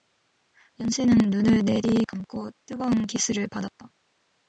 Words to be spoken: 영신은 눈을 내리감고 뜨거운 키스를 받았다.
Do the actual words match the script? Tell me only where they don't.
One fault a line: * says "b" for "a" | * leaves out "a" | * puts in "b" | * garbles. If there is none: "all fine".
all fine